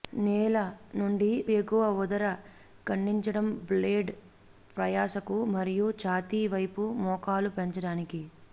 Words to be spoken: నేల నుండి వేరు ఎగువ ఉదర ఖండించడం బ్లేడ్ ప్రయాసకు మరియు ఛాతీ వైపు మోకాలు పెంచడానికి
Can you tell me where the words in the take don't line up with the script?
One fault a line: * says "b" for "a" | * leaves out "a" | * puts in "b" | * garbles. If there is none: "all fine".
* leaves out "వేరు"